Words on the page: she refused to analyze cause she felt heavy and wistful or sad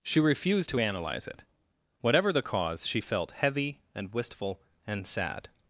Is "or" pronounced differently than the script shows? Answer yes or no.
yes